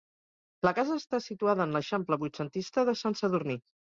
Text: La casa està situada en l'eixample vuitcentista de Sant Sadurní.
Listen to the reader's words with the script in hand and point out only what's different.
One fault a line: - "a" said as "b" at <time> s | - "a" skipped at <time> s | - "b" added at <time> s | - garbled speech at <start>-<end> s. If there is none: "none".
none